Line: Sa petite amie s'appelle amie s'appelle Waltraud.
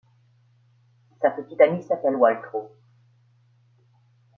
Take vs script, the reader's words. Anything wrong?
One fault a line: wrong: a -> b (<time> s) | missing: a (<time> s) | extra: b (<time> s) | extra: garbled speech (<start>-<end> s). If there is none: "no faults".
missing: amie s'appelle (2.2 s)